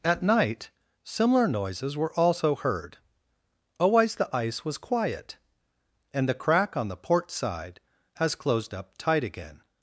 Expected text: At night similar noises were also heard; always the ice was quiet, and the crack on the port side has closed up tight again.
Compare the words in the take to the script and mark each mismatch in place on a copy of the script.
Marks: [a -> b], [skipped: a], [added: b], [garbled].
At night similar noises were also heard; always the ice was quiet, and the crack on the port side has closed up tight again.